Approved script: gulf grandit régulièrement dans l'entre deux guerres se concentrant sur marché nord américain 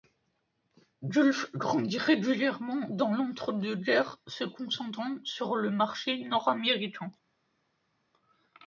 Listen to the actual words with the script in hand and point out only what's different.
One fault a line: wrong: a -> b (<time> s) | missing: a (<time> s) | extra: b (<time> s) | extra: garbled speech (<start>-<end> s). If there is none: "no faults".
extra: le (5.6 s)